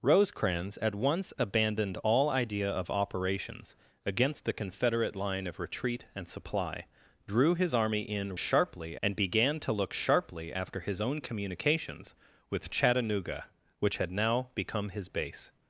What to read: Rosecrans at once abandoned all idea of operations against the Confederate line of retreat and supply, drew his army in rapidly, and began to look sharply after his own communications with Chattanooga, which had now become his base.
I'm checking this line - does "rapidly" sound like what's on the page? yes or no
no